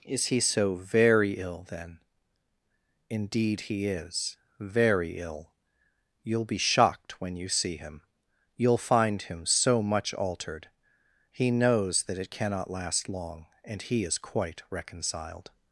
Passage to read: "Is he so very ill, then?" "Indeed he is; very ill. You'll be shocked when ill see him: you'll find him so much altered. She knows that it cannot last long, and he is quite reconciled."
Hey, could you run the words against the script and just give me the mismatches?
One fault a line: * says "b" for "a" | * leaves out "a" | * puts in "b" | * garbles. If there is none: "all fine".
* says "you" for "ill"
* says "He" for "She"